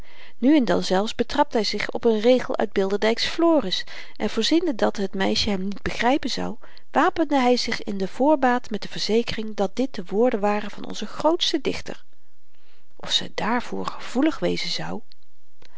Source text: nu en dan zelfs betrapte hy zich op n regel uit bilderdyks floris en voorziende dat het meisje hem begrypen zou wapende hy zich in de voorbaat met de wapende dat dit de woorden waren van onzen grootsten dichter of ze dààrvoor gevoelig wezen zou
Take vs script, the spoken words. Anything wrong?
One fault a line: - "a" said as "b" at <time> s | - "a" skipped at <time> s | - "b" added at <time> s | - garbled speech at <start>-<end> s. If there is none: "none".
- "niet" added at 5.6 s
- "wapende" said as "verzekering" at 8.9 s